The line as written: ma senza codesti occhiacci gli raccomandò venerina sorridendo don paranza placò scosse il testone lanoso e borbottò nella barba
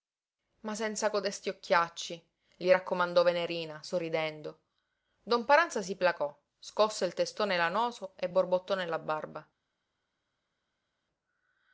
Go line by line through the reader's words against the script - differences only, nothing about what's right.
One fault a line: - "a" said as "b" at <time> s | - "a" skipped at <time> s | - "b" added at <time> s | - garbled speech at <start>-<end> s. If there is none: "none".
- "si" added at 5.8 s